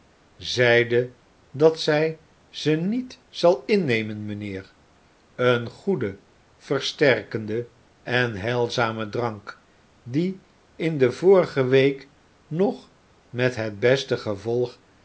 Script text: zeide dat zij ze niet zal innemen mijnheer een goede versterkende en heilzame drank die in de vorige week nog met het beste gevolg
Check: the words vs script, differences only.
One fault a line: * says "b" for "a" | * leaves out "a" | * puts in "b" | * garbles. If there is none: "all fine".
all fine